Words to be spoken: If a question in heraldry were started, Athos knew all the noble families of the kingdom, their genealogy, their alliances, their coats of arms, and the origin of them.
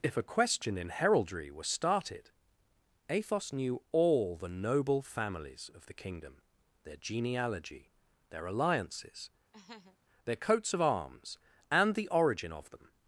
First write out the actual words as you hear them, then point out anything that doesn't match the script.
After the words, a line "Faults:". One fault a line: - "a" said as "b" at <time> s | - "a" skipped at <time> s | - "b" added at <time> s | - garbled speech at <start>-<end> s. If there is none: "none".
If a question in heraldry were started, Athos knew all the noble families of the kingdom, their genealogy, their alliances, their coats of arms, and the origin of them.
Faults:
none